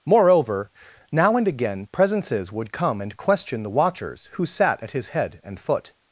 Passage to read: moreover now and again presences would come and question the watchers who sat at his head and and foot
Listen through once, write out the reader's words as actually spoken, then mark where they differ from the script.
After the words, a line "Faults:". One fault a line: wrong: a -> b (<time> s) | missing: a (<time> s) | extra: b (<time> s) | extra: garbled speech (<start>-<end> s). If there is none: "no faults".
moreover now and again presences would come and question the watchers who sat at his head and foot
Faults:
missing: and (5.6 s)